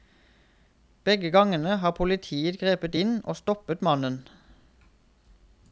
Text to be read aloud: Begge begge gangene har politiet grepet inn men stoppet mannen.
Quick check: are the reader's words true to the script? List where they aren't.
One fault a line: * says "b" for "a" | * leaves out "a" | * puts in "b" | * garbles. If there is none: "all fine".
* leaves out "begge"
* says "og" for "men"